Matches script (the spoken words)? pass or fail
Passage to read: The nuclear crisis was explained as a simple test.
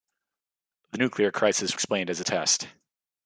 fail